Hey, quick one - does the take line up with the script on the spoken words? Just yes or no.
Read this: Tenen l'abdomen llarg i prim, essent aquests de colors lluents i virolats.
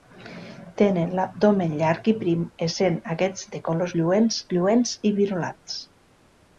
no